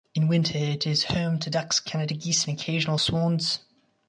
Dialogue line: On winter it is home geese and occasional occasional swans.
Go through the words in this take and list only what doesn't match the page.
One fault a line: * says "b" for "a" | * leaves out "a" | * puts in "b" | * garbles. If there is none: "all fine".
* says "In" for "On"
* puts in "to ducks Canada"
* leaves out "occasional"